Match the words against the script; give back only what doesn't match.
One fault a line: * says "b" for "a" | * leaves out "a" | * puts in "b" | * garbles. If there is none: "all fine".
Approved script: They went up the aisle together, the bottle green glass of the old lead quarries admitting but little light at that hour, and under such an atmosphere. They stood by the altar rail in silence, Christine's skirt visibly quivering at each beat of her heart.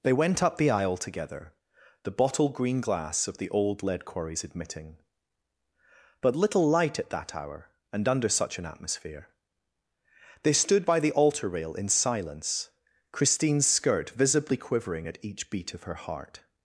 all fine